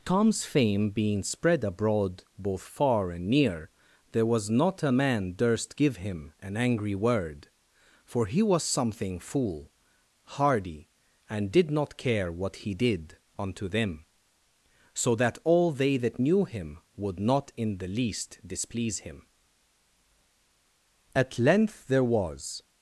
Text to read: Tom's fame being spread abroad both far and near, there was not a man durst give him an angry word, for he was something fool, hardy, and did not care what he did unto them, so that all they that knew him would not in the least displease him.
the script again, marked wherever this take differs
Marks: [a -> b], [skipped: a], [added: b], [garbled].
Tom's fame being spread abroad both far and near, there was not a man durst give him an angry word, for he was something fool, hardy, and did not care what he did unto them, so that all they that knew him would not in the least displease him. [added: At length there was]